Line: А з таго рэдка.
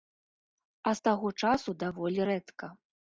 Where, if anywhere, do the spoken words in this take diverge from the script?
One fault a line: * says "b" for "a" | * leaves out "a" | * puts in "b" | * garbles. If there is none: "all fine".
* puts in "часу даволі"